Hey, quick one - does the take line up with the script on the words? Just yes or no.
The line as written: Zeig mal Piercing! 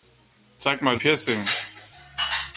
yes